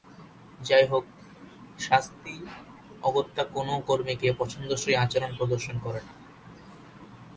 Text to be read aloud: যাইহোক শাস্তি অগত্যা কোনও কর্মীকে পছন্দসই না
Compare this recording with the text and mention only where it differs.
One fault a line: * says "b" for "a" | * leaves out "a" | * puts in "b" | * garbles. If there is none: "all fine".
* puts in "আচরণ প্রদর্শন করে"